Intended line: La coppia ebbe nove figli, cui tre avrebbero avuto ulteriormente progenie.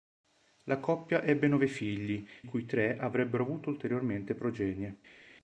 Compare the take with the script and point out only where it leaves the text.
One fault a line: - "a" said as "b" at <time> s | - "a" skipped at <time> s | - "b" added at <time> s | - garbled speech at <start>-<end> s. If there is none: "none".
none